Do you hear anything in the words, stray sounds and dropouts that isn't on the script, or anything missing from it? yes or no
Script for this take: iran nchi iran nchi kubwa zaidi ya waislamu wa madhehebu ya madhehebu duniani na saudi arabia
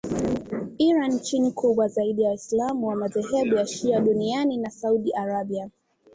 yes